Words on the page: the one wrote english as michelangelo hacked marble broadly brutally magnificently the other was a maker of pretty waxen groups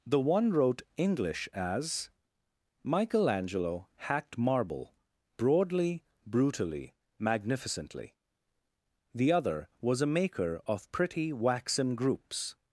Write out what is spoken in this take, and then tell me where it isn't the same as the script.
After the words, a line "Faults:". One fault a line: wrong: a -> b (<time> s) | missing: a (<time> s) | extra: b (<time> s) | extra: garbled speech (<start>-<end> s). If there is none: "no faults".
the one wrote english as michelangelo hacked marble broadly brutally magnificently the other was a maker of pretty waxen groups
Faults:
no faults